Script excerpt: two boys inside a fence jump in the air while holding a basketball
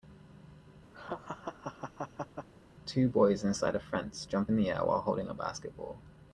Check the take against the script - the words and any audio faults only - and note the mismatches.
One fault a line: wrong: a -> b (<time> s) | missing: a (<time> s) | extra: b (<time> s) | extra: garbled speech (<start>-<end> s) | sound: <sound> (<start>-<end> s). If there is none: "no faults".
sound: laugh (0.9-2.5 s)